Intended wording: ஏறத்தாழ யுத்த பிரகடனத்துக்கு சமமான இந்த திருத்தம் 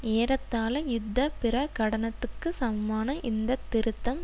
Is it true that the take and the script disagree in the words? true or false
false